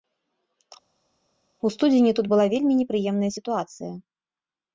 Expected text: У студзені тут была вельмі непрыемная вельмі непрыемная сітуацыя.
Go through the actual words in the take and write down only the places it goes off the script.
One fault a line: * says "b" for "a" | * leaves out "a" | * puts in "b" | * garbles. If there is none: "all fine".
* leaves out "вельмі непрыемная"